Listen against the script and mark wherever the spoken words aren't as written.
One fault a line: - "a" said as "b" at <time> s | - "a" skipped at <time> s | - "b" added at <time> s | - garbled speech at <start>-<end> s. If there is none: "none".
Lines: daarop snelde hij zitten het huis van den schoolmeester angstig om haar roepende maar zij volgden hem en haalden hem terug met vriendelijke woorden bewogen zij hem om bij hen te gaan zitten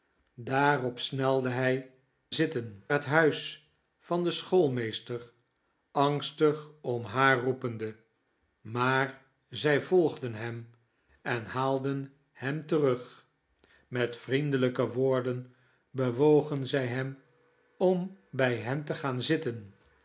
none